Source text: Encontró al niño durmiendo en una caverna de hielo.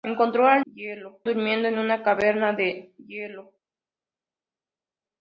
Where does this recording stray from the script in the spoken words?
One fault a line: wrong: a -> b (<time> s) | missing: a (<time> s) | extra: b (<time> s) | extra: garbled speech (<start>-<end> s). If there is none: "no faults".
wrong: niño -> hielo (0.6 s)